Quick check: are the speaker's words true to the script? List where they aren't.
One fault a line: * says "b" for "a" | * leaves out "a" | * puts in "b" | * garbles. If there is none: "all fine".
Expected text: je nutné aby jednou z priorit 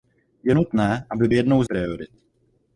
all fine